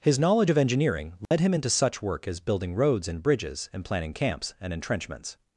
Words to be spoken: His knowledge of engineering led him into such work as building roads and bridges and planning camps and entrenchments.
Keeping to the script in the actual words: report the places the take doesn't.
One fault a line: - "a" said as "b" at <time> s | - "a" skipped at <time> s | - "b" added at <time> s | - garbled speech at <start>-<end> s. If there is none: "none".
none